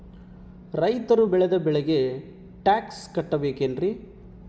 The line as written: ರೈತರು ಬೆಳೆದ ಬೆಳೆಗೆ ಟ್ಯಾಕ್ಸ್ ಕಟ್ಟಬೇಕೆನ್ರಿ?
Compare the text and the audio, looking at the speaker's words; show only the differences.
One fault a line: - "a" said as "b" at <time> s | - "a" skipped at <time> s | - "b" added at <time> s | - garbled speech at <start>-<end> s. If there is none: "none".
none